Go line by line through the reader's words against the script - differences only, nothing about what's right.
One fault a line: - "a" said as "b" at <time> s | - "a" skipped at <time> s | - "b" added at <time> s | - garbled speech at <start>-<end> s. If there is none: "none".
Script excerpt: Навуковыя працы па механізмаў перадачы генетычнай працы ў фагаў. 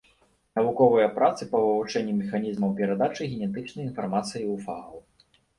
- "вывучэнні" added at 1.6 s
- "працы" said as "інфармацыі" at 3.9 s